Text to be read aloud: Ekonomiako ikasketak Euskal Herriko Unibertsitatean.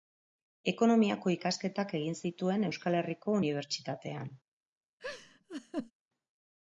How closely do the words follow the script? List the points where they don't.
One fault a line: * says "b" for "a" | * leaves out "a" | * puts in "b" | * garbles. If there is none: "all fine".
* puts in "egin zituen"